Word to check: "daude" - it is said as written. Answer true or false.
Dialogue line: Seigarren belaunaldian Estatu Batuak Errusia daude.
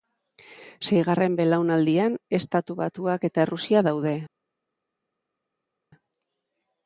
true